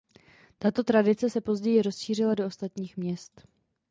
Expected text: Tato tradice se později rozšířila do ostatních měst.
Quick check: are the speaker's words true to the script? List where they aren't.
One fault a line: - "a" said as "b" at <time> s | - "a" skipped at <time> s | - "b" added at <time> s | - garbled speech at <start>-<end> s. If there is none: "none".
none